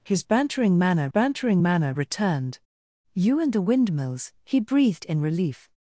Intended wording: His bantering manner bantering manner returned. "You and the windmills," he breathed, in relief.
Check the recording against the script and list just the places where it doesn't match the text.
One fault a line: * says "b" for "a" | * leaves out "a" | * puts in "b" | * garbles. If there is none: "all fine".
all fine